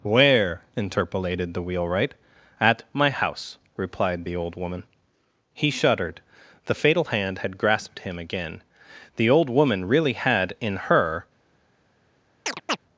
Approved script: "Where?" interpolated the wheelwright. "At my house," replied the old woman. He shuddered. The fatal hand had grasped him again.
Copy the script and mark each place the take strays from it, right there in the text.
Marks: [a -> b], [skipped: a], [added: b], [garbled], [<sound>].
"Where?" interpolated the wheelwright. "At my house," replied the old woman. He shuddered. The fatal hand had grasped him again. [added: The old woman really had in her] [chirp]